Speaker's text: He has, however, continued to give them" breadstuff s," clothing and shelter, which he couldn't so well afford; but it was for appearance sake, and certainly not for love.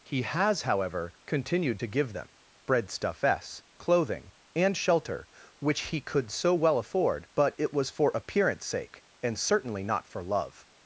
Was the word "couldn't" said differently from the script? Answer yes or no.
yes